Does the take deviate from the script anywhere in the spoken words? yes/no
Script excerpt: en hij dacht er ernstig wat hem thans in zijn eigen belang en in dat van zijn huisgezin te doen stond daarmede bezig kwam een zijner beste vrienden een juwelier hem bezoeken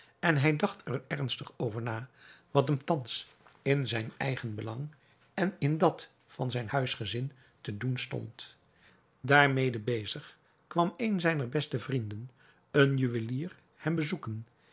yes